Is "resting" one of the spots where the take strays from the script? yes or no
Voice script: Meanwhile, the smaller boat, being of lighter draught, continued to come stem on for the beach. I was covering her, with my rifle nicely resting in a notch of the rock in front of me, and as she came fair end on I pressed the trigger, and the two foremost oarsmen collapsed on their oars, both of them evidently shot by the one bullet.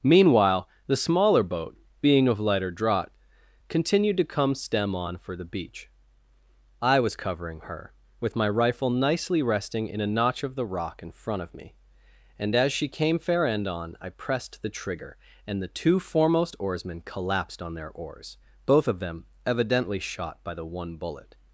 no